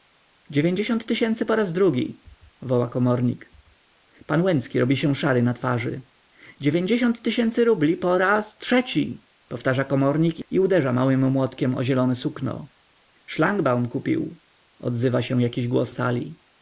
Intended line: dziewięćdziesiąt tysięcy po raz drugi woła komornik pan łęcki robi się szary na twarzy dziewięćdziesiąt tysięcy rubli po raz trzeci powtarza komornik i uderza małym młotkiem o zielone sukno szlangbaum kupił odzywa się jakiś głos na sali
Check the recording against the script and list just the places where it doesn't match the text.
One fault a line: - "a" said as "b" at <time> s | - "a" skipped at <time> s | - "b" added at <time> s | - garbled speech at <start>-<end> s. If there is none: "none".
- "na" skipped at 15.9 s